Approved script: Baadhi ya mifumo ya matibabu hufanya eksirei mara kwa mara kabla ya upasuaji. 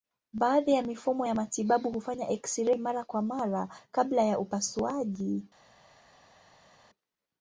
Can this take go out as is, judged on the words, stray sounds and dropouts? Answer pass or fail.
pass